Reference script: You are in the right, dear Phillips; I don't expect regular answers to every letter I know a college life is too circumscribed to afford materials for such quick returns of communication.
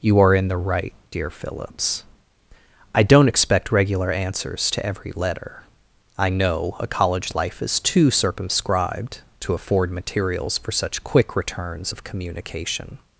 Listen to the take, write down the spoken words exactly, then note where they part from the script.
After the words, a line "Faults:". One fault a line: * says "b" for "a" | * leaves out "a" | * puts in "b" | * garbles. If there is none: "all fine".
You are in the right, dear Phillips; I don't expect regular answers to every letter I know a college life is too circumscribed to afford materials for such quick returns of communication.
Faults:
all fine